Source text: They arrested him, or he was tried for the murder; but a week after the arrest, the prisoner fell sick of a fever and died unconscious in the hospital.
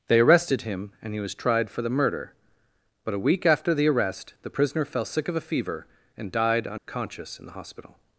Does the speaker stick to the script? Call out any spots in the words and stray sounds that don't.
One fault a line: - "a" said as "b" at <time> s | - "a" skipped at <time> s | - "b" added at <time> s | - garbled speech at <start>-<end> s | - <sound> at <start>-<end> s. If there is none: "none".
- "or" said as "and" at 1.0 s
- dropout at 6.8-6.9 s